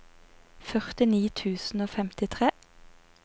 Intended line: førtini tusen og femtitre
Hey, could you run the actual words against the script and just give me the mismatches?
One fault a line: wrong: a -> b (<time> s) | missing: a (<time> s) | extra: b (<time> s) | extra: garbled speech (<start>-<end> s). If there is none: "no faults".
no faults